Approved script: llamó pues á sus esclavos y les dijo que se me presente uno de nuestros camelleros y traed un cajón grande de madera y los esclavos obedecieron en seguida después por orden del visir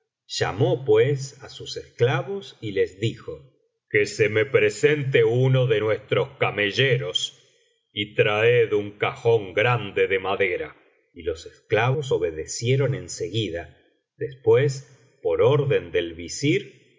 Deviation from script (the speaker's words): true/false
false